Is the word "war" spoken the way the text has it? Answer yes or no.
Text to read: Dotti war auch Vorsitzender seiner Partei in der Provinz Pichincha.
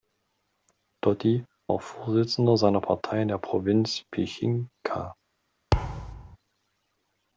no